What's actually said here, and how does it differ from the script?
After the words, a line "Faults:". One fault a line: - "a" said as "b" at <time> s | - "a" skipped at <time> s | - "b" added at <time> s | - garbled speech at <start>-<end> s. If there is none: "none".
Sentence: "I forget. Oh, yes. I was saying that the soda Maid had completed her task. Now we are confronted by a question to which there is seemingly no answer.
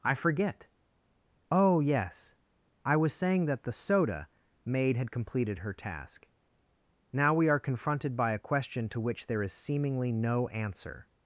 "I forget. Oh, yes. I was saying that the soda Maid had completed her task. Now we are confronted by a question to which there is seemingly no answer.
Faults:
none